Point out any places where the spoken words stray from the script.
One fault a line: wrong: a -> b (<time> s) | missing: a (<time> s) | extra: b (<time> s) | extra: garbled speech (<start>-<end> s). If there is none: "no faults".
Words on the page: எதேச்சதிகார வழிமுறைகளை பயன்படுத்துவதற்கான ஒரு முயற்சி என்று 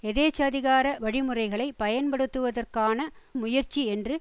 missing: ஒரு (3.0 s)